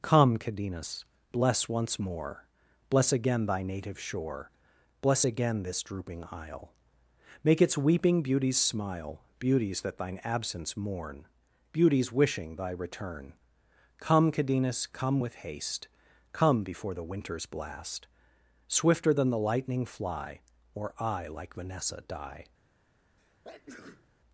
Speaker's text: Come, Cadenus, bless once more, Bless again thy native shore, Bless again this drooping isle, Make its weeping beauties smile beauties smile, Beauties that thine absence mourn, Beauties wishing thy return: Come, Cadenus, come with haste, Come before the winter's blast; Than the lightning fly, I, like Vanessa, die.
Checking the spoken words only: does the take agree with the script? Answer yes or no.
no